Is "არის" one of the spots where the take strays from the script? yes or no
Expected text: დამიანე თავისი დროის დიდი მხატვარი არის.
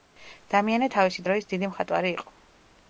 yes